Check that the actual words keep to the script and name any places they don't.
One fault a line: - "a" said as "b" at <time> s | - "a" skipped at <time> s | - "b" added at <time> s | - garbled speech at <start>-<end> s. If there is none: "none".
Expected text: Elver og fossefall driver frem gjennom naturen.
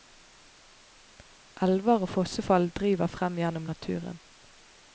none